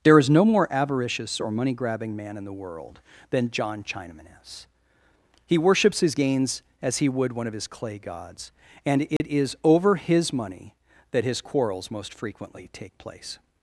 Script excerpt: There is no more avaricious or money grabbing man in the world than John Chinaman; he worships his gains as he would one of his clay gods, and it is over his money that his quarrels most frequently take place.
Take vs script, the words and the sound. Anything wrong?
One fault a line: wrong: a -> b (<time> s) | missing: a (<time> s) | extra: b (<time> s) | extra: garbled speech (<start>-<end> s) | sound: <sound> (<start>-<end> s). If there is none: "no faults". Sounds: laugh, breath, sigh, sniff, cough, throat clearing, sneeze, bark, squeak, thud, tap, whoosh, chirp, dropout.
extra: is (4.4 s)
sound: dropout (9.2-9.2 s)